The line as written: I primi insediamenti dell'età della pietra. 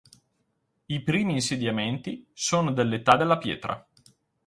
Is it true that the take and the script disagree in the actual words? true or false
true